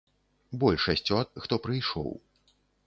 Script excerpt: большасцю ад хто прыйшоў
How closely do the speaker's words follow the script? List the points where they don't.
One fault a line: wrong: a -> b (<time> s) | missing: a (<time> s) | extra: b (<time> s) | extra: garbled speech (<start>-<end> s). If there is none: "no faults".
no faults